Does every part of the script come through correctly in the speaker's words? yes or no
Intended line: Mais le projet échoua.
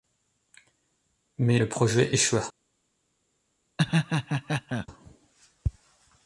yes